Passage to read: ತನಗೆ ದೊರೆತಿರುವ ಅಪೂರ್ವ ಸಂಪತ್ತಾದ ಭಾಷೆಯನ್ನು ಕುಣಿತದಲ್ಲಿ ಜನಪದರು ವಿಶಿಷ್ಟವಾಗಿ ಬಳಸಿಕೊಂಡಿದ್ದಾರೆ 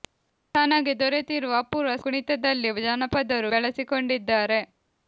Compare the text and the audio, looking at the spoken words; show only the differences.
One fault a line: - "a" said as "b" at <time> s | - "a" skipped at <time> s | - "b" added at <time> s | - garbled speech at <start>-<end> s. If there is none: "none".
- "ಸಂಪತ್ತಾದ ಭಾಷೆಯನ್ನು" skipped at 1.9 s
- "ವಿಶಿಷ್ಟವಾಗಿ" skipped at 3.5 s